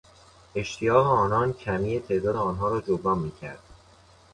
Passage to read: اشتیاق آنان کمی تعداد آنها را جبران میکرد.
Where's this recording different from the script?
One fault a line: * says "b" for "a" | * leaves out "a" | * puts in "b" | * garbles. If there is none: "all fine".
all fine